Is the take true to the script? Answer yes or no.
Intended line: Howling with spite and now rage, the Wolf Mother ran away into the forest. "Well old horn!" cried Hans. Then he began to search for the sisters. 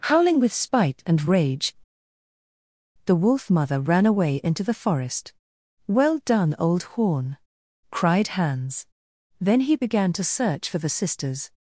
no